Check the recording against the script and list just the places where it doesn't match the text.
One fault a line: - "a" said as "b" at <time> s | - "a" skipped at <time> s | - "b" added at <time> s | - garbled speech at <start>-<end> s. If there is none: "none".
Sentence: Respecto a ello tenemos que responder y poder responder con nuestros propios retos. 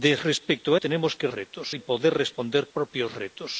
- "ello" skipped at 0.8 s
- "responder" said as "retos" at 1.3 s
- "con nuestros" skipped at 2.7 s